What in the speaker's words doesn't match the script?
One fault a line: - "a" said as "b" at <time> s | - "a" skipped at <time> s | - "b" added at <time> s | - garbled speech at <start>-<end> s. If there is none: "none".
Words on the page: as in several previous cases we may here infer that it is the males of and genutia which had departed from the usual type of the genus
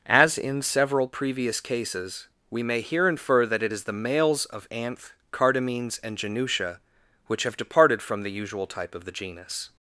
- "anth cardamines" added at 4.7 s
- "had" said as "have" at 7.4 s